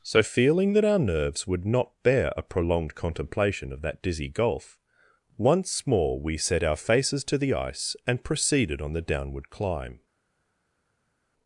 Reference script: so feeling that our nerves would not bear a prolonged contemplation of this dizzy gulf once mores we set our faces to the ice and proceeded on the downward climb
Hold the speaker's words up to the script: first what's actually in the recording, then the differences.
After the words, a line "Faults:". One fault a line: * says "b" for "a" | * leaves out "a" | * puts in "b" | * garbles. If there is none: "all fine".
so feeling that our nerves would not bear a prolonged contemplation of that dizzy gulf once more we set our faces to the ice and proceeded on the downward climb
Faults:
* says "that" for "this"
* says "more" for "mores"